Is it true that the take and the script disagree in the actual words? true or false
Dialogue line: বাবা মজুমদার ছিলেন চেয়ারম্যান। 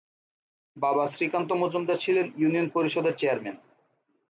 true